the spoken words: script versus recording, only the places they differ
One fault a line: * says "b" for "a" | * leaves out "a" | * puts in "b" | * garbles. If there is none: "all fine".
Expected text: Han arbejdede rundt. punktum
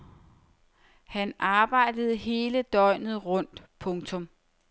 * puts in "hele døgnet"